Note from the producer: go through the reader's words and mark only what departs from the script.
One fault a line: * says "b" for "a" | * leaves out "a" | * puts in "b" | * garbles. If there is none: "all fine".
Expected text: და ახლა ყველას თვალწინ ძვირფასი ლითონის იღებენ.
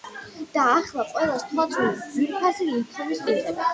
all fine